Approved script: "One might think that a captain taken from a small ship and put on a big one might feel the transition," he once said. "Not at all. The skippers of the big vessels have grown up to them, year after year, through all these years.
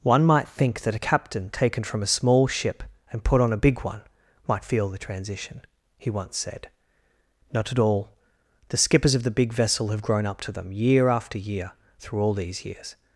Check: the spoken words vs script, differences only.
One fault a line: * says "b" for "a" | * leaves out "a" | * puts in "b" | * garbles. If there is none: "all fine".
* says "vessel" for "vessels"